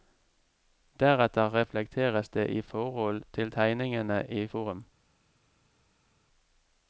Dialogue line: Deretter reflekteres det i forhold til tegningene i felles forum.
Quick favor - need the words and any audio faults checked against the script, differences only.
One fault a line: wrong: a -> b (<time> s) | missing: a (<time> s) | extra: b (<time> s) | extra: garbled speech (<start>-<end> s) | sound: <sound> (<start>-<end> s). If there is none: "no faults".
missing: felles (4.5 s)